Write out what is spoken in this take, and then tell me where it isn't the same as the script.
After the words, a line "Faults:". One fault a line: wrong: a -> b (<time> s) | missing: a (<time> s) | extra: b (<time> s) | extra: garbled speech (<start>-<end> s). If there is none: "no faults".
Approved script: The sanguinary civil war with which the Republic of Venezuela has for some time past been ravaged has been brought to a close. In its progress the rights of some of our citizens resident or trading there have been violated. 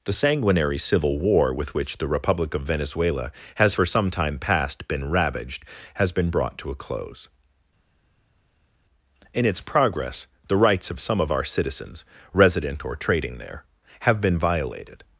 The sanguinary civil war with which the Republic of Venezuela has for some time past been ravaged has been brought to a close. In its progress the rights of some of our citizens resident or trading there have been violated.
Faults:
no faults